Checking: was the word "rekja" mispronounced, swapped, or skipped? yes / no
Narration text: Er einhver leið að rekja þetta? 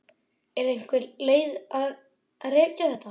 no